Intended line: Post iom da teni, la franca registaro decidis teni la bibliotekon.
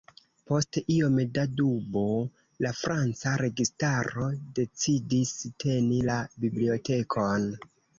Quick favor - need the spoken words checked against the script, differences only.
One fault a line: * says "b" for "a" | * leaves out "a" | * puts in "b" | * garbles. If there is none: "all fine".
* says "dubo" for "teni"